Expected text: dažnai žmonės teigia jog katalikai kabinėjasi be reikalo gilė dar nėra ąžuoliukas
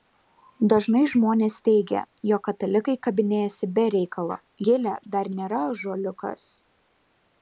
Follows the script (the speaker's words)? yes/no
yes